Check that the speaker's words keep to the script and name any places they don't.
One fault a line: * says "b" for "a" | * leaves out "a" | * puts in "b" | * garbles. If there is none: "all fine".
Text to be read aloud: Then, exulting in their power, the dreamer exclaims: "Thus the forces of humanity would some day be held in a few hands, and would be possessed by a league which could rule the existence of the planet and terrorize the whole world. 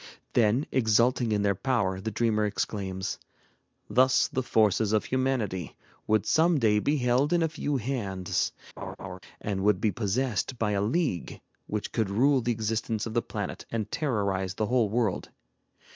all fine